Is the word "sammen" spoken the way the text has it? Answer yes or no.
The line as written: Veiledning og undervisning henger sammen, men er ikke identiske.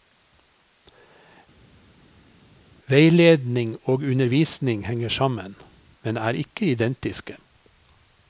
yes